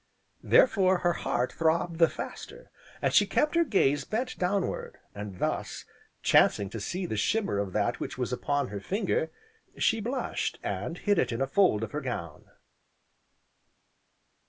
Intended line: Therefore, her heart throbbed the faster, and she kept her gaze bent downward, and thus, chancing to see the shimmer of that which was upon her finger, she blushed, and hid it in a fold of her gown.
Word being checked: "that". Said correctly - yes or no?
yes